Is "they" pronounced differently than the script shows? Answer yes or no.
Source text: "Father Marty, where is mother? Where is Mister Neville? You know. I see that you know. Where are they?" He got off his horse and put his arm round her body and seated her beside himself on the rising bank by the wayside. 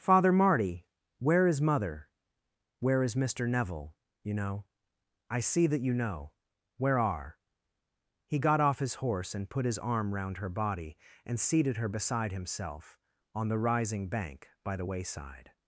yes